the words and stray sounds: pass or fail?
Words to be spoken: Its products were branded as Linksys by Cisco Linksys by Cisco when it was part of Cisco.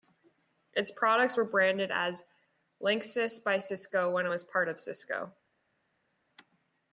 fail